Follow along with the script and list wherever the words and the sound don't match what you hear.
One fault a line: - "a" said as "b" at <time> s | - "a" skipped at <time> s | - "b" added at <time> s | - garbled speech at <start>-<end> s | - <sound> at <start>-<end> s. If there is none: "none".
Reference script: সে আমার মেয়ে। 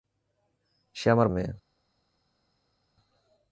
none